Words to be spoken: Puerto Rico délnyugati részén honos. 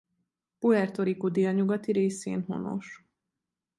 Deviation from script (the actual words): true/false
false